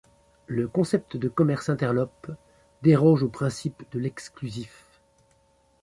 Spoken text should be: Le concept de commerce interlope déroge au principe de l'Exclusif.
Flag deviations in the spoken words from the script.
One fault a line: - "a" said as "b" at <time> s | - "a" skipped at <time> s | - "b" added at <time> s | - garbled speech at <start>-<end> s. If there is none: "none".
none